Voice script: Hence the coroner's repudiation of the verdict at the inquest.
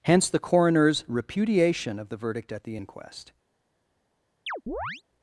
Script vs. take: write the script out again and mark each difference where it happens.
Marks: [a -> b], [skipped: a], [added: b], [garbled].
Hence the coroner's repudiation of the verdict at the inquest.